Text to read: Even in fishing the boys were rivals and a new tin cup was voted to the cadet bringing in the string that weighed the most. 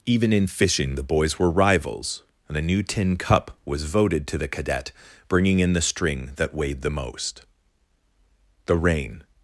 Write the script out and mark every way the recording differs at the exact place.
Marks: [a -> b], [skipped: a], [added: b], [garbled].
Even in fishing the boys were rivals and a new tin cup was voted to the cadet bringing in the string that weighed the most. [added: The rain]